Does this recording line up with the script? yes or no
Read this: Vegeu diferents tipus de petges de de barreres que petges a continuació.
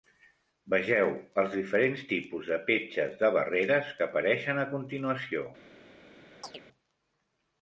no